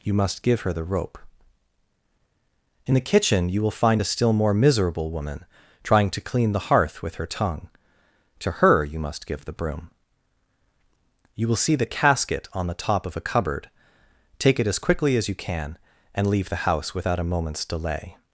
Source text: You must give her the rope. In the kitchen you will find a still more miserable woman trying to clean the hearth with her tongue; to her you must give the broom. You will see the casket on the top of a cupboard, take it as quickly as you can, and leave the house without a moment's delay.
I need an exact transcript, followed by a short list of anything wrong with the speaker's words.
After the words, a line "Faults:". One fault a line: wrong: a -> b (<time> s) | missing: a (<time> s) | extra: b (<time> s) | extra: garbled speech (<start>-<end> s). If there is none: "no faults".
You must give her the rope. In the kitchen you will find a still more miserable woman trying to clean the hearth with her tongue; to her you must give the broom. You will see the casket on the top of a cupboard, take it as quickly as you can, and leave the house without a moment's delay.
Faults:
no faults